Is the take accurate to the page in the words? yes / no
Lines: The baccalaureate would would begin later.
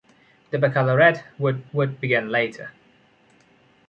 yes